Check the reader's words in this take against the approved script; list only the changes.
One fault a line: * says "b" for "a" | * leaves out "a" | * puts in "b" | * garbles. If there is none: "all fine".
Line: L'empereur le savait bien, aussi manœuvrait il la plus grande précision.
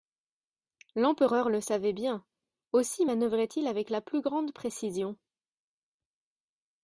* puts in "avec"